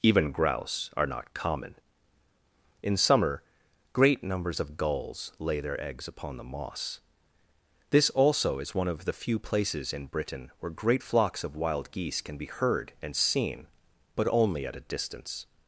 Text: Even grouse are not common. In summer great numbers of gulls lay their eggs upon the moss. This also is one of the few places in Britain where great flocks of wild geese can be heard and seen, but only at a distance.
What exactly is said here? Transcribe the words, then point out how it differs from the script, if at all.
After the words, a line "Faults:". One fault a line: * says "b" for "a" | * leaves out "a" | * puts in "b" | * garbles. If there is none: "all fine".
Even grouse are not common. In summer great numbers of gulls lay their eggs upon the moss. This also is one of the few places in Britain where great flocks of wild geese can be heard and seen, but only at a distance.
Faults:
all fine